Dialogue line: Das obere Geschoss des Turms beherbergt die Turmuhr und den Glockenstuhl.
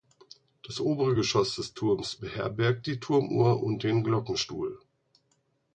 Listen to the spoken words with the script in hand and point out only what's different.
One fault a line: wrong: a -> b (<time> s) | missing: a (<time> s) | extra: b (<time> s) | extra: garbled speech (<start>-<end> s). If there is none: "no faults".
no faults